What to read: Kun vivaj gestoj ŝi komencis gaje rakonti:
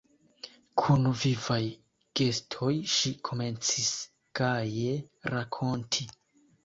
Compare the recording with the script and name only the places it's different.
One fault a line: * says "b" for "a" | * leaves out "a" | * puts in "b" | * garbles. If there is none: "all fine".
all fine